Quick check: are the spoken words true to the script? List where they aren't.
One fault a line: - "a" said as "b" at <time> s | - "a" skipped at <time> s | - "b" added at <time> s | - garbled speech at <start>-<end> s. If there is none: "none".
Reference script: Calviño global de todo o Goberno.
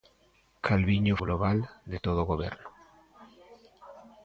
none